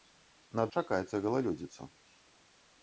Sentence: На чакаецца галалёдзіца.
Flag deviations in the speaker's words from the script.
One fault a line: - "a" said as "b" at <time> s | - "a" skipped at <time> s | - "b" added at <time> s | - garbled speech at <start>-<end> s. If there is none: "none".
none